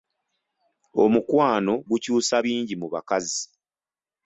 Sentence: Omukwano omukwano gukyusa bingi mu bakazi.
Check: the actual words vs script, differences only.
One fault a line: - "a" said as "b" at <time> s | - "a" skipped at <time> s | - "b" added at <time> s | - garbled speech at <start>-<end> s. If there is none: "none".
- "omukwano" skipped at 1.7 s